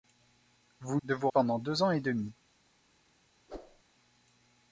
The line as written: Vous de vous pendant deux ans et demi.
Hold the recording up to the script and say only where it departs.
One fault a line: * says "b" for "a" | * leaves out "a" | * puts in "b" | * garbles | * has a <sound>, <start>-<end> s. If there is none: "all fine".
* has a whoosh, 3.5-3.8 s